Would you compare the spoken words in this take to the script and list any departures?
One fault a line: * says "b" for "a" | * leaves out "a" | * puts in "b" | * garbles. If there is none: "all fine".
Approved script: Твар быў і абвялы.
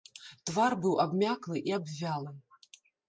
* puts in "абмяклы"